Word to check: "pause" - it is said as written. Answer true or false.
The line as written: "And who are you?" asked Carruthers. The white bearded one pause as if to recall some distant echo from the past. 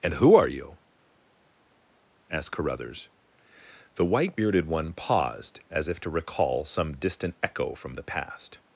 false